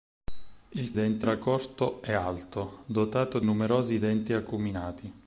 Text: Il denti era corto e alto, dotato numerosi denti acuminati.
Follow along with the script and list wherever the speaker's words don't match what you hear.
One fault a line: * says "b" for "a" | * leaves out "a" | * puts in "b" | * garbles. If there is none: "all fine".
all fine